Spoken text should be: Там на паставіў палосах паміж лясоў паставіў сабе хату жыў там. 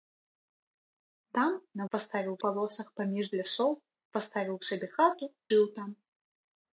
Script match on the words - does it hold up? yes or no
yes